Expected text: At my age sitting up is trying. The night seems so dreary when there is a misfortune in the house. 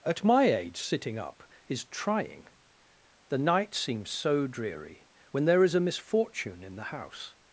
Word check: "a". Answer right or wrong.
right